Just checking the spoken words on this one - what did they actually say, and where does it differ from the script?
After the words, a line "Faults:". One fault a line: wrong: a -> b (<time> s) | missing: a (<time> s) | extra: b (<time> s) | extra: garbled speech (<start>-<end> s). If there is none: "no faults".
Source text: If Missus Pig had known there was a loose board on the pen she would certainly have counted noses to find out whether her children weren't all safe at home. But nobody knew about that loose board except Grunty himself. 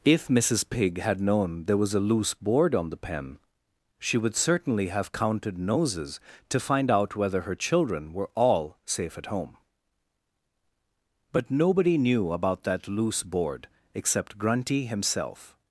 If Missus Pig had known there was a loose board on the pen she would certainly have counted noses to find out whether her children were all safe at home. But nobody knew about that loose board except Grunty himself.
Faults:
wrong: weren't -> were (8.1 s)